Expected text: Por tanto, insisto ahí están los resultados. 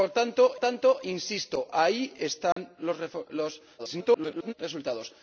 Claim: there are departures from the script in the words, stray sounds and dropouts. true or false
true